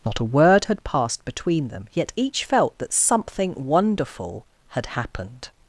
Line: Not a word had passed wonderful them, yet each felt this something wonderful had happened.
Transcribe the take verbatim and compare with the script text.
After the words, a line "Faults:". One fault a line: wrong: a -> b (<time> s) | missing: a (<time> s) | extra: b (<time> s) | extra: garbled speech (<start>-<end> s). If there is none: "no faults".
Not a word had passed between them, yet each felt that something wonderful had happened.
Faults:
wrong: wonderful -> between (1.2 s)
wrong: this -> that (2.8 s)